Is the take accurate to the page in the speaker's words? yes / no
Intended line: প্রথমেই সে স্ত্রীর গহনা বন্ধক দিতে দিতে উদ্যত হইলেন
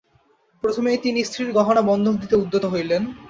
no